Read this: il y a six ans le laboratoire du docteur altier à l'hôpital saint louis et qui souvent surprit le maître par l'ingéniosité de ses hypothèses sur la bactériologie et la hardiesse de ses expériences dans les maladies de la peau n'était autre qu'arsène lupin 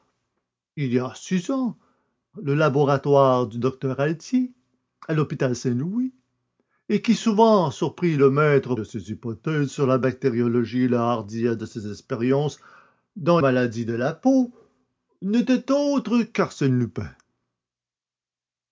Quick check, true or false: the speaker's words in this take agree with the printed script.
false